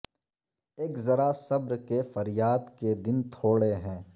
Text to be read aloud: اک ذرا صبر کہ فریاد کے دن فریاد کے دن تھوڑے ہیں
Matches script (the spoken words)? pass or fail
fail